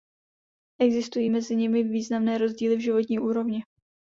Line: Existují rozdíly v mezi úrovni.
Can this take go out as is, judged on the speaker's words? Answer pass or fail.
fail